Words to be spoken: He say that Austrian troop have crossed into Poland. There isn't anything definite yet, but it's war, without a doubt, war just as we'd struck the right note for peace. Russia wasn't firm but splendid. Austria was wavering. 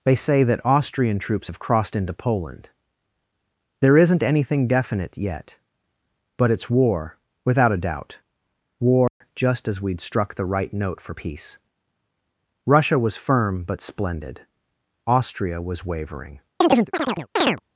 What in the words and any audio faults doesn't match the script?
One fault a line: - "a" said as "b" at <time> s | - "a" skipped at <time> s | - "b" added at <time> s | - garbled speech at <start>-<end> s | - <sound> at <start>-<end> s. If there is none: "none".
- "He" said as "They" at 0.0 s
- "troop" said as "troops" at 1.2 s
- dropout at 9.1-9.2 s
- "wasn't" said as "was" at 13.0 s
- chirp at 16.6-17.6 s